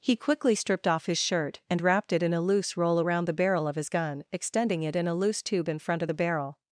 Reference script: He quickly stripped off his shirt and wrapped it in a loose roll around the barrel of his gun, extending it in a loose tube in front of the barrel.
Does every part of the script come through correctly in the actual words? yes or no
yes